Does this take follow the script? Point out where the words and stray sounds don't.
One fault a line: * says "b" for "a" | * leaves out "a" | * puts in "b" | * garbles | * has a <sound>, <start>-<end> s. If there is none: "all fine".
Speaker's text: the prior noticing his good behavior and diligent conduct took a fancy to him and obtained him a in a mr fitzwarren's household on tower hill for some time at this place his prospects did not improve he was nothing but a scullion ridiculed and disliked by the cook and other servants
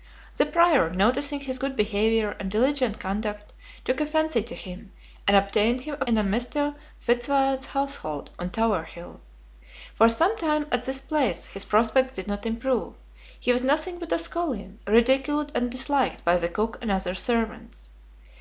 all fine